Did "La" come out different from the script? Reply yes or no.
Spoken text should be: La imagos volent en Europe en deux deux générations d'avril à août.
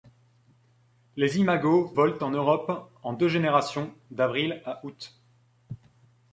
yes